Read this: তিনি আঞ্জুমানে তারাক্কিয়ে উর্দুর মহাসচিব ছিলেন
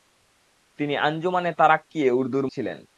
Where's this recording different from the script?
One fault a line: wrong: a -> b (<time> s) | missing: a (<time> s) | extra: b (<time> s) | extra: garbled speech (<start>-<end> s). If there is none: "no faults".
missing: মহাসচিব (2.5 s)